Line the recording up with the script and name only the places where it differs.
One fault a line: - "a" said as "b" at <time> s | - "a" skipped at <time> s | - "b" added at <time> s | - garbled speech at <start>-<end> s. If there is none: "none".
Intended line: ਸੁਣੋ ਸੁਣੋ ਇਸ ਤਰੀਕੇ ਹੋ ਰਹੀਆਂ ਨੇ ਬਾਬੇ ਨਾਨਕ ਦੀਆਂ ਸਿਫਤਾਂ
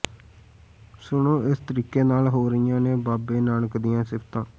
- "ਸੁਣੋ" skipped at 1.4 s
- "ਨਾਲ" added at 2.0 s